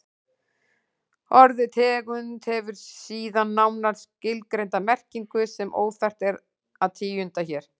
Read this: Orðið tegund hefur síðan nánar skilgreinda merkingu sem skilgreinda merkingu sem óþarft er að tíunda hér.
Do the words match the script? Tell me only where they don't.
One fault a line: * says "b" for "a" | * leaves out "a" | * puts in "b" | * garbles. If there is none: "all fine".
* leaves out "skilgreinda merkingu sem"